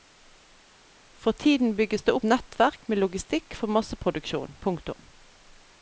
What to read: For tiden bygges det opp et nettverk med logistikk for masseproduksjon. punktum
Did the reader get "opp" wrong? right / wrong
wrong